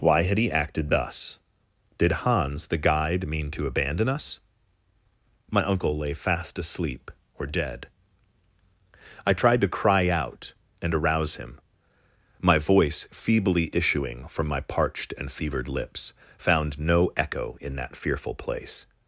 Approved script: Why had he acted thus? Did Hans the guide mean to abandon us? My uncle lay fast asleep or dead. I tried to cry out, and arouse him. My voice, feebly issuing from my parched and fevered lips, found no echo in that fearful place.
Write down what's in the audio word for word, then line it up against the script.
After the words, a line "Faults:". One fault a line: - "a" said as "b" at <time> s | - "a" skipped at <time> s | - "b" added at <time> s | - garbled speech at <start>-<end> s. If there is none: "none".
Why had he acted thus? Did Hans the guide mean to abandon us? My uncle lay fast asleep or dead. I tried to cry out, and arouse him. My voice, feebly issuing from my parched and fevered lips, found no echo in that fearful place.
Faults:
none